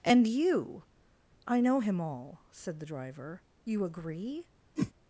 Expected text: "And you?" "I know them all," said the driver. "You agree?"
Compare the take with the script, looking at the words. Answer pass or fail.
fail